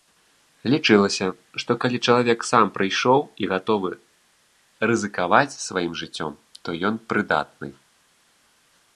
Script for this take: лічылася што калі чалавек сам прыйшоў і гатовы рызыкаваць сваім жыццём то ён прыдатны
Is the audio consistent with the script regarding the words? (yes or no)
yes